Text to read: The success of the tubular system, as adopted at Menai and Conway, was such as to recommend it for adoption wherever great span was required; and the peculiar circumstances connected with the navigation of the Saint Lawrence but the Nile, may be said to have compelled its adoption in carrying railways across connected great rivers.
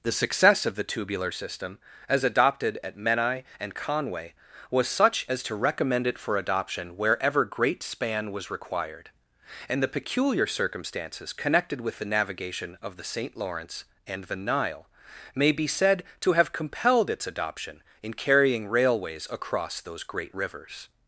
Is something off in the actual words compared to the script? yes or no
yes